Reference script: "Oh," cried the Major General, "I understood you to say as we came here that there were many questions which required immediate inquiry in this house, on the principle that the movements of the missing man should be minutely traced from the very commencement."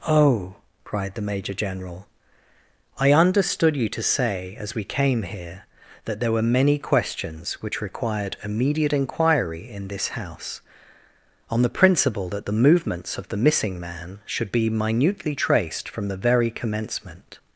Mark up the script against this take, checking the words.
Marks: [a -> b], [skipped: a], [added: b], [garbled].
"Oh," cried the Major General, "I understood you to say as we came here that there were many questions which required immediate inquiry in this house, on the principle that the movements of the missing man should be minutely traced from the very commencement."